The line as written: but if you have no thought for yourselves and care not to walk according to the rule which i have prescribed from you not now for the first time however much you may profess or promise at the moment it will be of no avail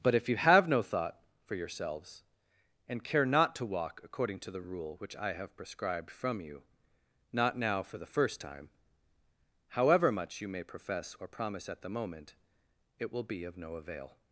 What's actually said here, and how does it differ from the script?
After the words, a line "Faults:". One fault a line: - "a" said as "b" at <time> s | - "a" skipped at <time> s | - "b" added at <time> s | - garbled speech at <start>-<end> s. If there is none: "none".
but if you have no thought for yourselves and care not to walk according to the rule which i have prescribed from you not now for the first time however much you may profess or promise at the moment it will be of no avail
Faults:
none